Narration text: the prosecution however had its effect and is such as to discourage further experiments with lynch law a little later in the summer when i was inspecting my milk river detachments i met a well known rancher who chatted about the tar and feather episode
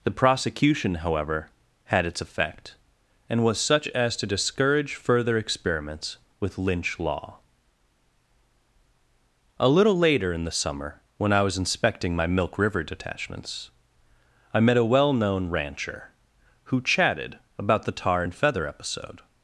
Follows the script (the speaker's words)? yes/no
no